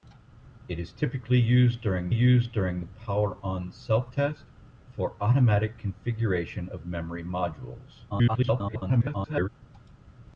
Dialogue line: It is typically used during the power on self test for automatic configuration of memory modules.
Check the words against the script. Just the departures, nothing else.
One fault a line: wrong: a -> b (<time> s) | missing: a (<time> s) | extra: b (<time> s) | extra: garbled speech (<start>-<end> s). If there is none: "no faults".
extra: used during (2.1 s)
extra: garbled speech (8.1-9.5 s)